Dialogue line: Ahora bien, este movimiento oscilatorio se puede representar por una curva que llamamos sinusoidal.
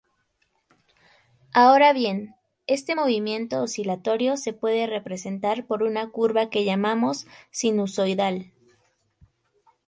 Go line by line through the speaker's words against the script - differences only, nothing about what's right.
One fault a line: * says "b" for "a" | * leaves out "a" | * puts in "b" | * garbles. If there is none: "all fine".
all fine